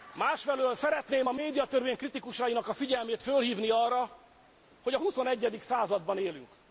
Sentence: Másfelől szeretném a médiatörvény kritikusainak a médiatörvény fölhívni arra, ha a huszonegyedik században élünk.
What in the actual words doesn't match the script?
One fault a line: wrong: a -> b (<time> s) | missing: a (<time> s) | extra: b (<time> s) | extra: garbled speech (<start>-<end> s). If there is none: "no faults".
wrong: médiatörvény -> figyelmét (2.7 s)
wrong: ha -> hogy (4.8 s)